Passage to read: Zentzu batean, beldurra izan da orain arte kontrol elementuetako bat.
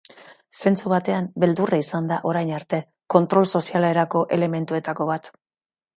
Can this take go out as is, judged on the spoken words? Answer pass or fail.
fail